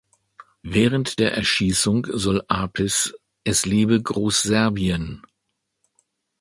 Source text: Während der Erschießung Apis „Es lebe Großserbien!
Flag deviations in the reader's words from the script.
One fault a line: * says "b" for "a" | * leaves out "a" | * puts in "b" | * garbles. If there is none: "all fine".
* puts in "soll"